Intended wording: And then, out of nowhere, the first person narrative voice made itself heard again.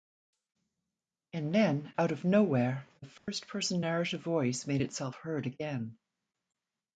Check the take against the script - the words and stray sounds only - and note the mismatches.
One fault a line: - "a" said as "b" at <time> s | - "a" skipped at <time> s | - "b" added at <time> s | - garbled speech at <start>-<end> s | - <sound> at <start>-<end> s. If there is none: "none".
- dropout at 3.2-3.3 s